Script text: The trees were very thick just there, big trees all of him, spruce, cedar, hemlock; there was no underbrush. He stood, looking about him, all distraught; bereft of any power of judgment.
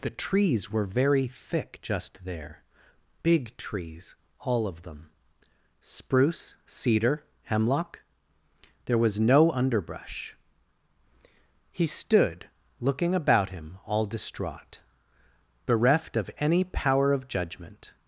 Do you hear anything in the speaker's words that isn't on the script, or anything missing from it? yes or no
yes